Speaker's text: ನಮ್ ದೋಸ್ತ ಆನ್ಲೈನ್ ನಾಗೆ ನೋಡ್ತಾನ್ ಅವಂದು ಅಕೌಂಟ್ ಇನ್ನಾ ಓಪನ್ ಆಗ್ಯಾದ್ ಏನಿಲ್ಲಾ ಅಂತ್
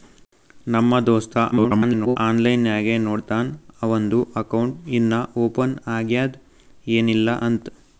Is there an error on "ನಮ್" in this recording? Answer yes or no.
no